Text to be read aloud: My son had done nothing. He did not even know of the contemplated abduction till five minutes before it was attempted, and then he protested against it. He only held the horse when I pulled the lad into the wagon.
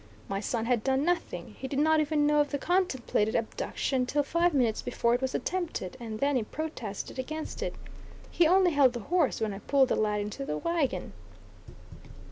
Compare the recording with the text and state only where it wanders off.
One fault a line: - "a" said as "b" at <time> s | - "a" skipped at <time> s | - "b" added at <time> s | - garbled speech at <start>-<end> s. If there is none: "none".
none